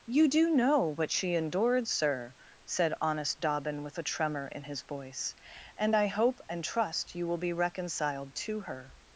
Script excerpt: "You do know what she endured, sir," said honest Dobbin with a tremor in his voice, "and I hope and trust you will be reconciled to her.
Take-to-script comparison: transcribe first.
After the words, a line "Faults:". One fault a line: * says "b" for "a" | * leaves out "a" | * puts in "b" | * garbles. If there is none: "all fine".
"You do know what she endured, sir," said honest Dobbin with a tremor in his voice, "and I hope and trust you will be reconciled to her.
Faults:
all fine